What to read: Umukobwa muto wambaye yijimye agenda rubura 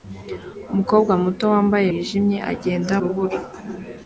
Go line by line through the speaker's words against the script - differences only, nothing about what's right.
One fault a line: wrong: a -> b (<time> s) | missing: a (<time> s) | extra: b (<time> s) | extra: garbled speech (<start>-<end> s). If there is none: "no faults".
no faults